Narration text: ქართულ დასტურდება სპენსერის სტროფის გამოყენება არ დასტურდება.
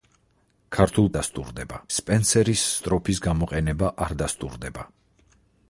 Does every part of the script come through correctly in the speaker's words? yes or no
yes